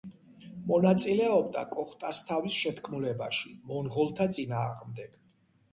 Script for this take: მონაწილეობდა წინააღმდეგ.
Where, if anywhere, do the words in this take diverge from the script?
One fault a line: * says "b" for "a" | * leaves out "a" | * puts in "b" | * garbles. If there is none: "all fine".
* puts in "კოხტასთავის შეთქმულებაში მონღოლთა"